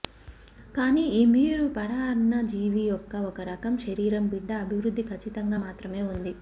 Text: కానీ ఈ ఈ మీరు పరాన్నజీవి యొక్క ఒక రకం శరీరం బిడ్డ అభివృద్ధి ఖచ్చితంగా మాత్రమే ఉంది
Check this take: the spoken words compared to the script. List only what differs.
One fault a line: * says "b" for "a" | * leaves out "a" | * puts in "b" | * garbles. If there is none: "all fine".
* leaves out "ఈ"